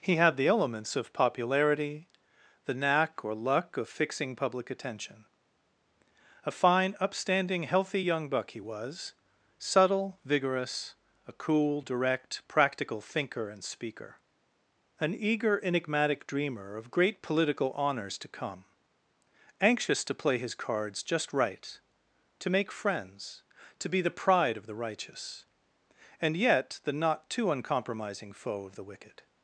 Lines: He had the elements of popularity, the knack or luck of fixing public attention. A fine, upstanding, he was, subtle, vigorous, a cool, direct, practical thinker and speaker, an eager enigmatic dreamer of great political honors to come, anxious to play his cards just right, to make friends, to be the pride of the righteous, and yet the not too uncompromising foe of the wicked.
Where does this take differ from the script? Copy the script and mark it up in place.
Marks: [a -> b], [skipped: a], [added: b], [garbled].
He had the elements of popularity, the knack or luck of fixing public attention. A fine, upstanding, [added: healthy young buck] he was, subtle, vigorous, a cool, direct, practical thinker and speaker, an eager enigmatic dreamer of great political honors to come, anxious to play his cards just right, to make friends, to be the pride of the righteous, and yet the not too uncompromising foe of the wicked.